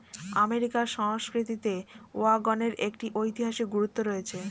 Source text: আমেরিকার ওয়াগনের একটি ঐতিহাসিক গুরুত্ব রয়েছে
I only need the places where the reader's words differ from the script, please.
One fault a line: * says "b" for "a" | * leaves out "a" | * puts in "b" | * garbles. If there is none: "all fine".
* puts in "সংস্কৃতিতে"